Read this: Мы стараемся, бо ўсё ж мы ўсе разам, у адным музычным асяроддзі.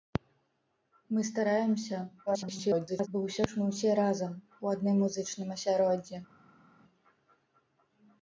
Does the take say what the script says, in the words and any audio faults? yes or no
no